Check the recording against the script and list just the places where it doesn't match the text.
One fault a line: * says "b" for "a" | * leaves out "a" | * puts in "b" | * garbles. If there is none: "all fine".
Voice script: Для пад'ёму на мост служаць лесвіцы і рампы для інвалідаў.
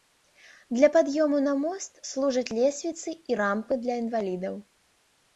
all fine